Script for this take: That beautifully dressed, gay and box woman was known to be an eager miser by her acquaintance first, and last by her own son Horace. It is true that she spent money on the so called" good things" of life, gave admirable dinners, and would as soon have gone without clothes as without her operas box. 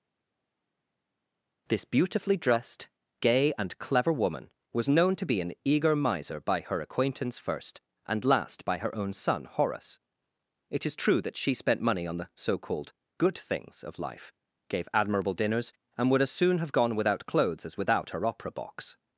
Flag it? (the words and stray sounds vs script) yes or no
yes